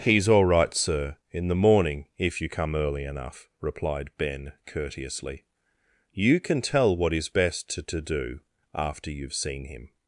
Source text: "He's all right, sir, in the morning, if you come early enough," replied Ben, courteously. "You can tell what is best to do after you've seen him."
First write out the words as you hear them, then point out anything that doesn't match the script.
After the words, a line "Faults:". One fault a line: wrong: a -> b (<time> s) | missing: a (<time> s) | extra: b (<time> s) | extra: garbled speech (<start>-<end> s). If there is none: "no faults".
"He's all right, sir, in the morning, if you come early enough," replied Ben, courteously. "You can tell what is best to to do after you've seen him."
Faults:
extra: to (7.8 s)